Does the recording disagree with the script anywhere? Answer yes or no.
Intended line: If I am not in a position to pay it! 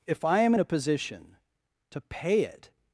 yes